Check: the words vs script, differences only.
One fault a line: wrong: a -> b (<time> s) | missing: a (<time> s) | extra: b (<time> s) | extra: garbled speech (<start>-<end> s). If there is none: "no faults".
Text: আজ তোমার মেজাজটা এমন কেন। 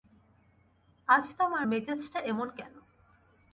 no faults